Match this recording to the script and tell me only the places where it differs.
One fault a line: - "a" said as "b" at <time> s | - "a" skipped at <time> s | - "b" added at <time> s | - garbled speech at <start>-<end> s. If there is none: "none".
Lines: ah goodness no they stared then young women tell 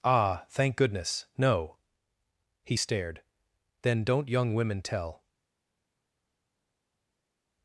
- "thank" added at 0.5 s
- "they" said as "he" at 2.6 s
- "don't" added at 4.0 s